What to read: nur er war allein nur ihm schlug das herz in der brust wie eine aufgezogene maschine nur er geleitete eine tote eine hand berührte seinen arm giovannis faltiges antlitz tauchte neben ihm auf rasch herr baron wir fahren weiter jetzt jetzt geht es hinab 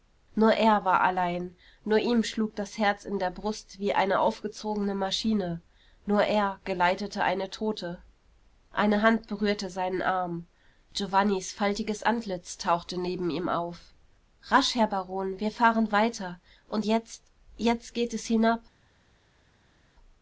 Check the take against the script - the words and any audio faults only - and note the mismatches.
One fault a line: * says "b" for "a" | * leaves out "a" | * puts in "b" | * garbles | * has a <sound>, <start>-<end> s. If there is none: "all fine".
* puts in "und"